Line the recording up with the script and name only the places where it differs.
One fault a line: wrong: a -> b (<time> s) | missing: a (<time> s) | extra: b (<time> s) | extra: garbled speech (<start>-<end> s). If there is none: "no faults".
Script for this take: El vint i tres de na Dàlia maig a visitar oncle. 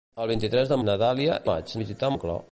no faults